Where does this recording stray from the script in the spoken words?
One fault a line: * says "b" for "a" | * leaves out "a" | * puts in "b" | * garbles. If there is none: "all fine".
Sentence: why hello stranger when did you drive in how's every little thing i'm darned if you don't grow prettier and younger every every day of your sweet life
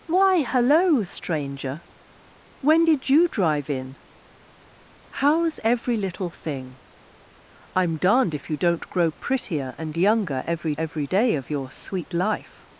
all fine